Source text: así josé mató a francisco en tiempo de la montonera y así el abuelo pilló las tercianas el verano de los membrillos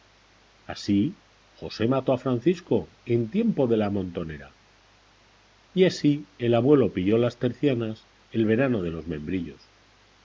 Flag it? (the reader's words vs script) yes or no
no